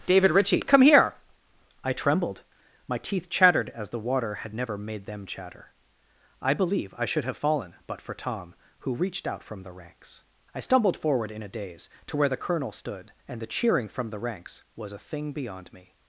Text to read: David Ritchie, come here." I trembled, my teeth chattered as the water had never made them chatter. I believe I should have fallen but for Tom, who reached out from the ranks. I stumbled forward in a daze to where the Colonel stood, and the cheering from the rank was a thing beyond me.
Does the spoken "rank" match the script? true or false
false